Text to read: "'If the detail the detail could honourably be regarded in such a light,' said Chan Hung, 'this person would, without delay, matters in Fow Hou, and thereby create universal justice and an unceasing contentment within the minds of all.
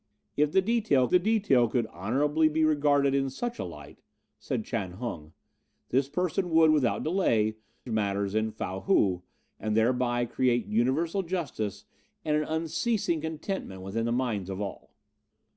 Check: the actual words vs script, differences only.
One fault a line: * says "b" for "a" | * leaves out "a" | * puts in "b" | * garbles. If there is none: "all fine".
all fine